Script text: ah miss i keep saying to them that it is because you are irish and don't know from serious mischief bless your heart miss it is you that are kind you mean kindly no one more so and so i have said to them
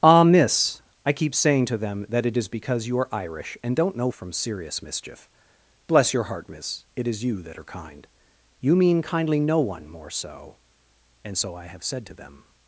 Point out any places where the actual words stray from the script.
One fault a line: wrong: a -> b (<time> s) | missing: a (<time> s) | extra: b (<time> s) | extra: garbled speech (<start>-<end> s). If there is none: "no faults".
no faults